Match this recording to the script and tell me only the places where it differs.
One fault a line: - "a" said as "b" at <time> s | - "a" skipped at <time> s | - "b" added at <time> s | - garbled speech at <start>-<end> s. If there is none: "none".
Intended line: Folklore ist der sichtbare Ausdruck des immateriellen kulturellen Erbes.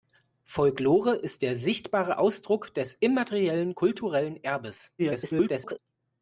- garbled speech at 5.0-5.8 s